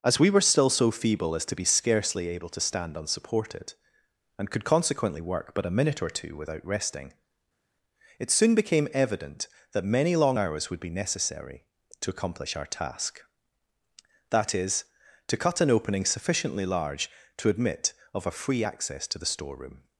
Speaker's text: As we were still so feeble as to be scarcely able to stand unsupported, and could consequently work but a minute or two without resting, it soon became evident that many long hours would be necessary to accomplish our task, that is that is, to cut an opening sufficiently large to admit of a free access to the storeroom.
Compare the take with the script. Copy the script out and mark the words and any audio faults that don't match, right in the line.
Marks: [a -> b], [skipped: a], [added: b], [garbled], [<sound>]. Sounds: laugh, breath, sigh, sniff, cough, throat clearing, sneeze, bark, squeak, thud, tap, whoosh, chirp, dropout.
As we were still so feeble as to be scarcely able to stand unsupported, and could consequently work but a minute or two without resting, it soon became evident that many long hours would be necessary to accomplish our task, that is [skipped: that is,] to cut an opening sufficiently large to admit of a free access to the storeroom.